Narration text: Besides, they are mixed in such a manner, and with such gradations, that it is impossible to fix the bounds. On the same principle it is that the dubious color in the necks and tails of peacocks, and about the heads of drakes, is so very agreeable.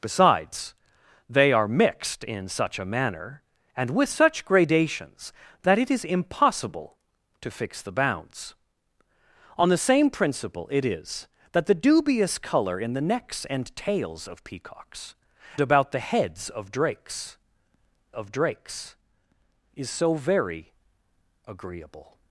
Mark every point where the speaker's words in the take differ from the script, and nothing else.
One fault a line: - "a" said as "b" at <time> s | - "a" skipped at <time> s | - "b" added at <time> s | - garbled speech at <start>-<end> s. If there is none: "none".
- "and" skipped at 15.2 s
- "of drakes" added at 18.1 s